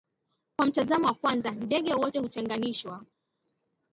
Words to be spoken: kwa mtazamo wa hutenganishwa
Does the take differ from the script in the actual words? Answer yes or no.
yes